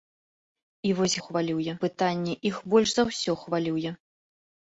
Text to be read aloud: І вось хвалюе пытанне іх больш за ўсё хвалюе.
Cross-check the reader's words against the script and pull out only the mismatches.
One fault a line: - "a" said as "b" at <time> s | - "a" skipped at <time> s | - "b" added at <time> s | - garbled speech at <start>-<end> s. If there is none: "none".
none